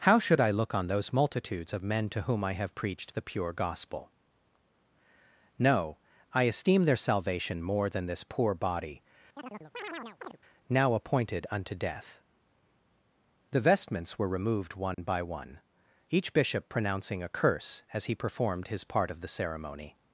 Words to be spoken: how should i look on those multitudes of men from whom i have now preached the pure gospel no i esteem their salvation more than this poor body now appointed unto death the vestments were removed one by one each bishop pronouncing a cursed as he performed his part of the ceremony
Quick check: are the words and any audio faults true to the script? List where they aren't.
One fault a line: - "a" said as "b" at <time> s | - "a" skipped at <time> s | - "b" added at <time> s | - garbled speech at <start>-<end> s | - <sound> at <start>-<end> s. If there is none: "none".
- "from" said as "to" at 2.1 s
- "now" skipped at 2.7 s
- chirp at 9.4-10.4 s
- dropout at 14.9-15.0 s
- "cursed" said as "curse" at 17.3 s